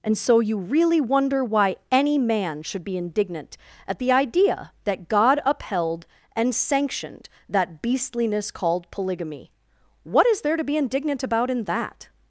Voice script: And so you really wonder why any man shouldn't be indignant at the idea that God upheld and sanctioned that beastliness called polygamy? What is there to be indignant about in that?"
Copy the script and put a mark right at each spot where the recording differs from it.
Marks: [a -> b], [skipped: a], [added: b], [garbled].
And so you really wonder why any man [shouldn't -> should] be indignant at the idea that God upheld and sanctioned that beastliness called polygamy? What is there to be indignant about in that?"